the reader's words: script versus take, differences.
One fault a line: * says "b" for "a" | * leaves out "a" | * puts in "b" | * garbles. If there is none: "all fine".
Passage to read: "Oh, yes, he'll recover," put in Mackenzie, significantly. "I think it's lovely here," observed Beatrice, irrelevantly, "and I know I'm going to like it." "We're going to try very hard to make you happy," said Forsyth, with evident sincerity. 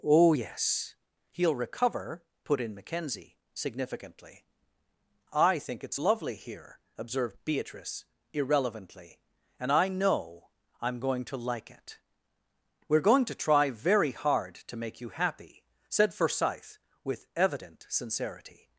all fine